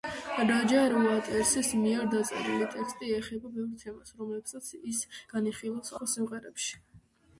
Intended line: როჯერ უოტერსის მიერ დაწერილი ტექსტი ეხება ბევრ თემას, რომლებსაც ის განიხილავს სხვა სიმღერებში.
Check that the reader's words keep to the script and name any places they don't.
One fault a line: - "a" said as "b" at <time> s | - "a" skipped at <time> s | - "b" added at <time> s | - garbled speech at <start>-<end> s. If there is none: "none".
none